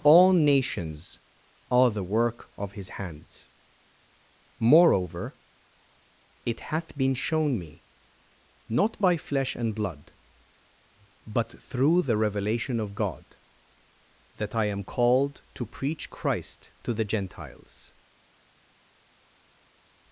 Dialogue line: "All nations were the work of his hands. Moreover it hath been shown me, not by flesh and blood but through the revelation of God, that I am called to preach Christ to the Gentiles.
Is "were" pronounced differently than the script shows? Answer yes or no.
yes